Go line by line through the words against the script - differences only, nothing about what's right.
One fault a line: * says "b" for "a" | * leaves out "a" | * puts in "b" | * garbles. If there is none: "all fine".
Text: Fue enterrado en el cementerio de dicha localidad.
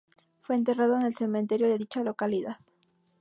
all fine